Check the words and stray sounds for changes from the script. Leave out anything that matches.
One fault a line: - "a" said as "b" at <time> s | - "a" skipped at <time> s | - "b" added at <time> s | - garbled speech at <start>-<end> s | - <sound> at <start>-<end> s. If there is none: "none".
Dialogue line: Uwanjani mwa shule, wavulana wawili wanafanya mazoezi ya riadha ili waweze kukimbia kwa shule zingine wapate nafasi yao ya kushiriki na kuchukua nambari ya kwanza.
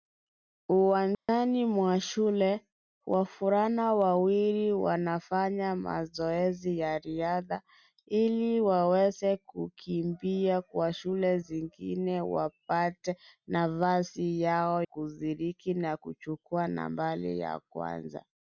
- dropout at 1.1-1.3 s
- "ya" skipped at 14.8 s